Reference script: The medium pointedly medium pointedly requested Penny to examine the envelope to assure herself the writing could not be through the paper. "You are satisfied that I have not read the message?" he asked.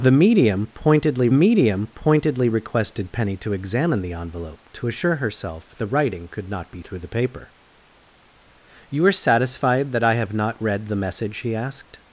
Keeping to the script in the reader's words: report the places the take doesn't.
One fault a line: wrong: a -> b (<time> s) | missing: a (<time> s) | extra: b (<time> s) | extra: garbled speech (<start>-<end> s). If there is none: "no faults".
no faults